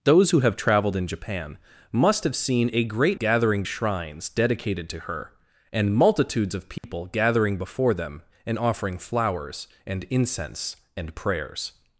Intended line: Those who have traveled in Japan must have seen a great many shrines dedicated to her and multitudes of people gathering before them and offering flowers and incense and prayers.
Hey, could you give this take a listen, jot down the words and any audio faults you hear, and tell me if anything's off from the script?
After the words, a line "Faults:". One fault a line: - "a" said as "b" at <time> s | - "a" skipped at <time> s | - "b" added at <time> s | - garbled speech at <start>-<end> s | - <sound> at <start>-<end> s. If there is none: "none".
Those who have traveled in Japan must have seen a great gathering shrines dedicated to her and multitudes of people gathering before them and offering flowers and incense and prayers.
Faults:
- "many" said as "gathering" at 3.1 s
- dropout at 6.8-6.8 s